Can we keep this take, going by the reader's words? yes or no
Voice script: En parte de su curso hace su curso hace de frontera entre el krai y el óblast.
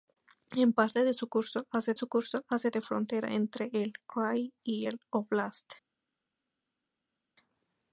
yes